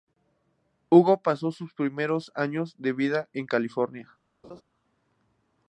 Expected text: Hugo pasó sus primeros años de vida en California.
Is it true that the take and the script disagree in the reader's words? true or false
false